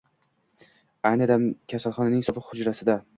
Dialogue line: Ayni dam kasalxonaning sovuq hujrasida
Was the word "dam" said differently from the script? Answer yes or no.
no